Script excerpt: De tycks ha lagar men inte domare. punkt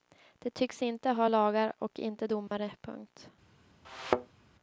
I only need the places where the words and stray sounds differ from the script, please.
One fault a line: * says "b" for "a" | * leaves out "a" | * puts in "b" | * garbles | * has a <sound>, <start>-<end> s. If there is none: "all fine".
* puts in "inte"
* says "och" for "men"
* has a dropout, 2.5-2.5 s
* has a thud, 3.8-4.4 s